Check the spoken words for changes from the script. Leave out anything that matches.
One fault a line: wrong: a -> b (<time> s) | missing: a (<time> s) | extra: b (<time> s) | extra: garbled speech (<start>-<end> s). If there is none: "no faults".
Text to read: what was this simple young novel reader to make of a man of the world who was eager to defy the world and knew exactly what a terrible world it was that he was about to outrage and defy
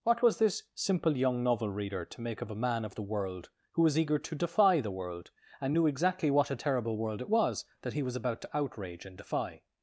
no faults